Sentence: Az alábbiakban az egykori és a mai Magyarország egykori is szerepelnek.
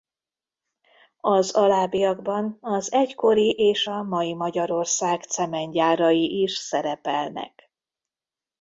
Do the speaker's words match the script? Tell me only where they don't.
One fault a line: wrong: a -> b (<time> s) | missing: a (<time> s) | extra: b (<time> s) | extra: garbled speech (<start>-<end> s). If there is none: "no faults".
wrong: egykori -> cementgyárai (5.2 s)